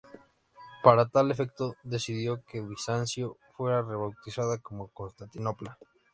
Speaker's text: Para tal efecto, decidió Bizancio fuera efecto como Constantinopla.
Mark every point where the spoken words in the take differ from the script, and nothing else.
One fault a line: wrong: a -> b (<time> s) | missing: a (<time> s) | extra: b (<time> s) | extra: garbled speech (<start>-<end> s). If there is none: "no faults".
extra: que (2.4 s)
wrong: efecto -> rebautizada (3.8 s)